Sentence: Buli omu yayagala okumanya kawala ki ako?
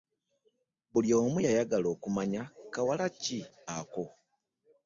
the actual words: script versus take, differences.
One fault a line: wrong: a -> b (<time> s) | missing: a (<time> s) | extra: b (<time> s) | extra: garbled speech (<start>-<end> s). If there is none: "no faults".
no faults